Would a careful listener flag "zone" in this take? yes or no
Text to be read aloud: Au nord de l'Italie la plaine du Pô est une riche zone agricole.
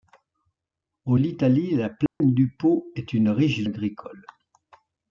yes